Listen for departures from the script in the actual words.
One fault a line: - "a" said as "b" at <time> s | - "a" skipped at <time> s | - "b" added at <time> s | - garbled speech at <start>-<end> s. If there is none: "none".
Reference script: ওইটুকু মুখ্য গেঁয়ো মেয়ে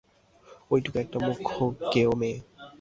- "একটা" added at 1.0 s